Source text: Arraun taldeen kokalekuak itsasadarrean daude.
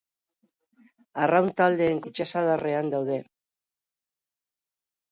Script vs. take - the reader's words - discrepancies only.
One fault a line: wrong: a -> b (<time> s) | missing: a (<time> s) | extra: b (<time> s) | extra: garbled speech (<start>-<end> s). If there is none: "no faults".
missing: kokalekuak (2.0 s)